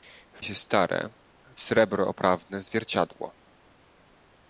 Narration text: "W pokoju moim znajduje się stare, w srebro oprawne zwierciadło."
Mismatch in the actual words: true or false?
true